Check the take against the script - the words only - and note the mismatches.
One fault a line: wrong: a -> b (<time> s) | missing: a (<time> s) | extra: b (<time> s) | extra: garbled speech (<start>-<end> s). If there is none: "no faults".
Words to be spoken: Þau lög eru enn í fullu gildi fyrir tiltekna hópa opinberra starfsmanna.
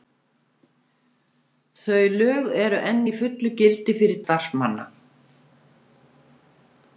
missing: tiltekna hópa opinberra (4.2 s)